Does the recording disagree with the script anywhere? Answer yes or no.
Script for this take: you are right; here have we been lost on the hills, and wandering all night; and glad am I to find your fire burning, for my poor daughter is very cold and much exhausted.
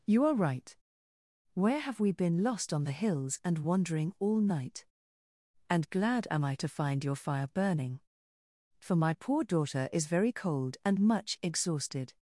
yes